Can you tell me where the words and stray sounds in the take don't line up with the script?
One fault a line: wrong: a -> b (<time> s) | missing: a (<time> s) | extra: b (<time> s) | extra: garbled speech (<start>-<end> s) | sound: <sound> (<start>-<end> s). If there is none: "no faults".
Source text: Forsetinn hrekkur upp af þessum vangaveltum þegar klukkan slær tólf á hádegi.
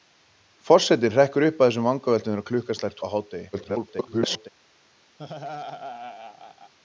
missing: tólf (3.0 s)
extra: garbled speech (3.5-4.5 s)
sound: laugh (5.2-6.7 s)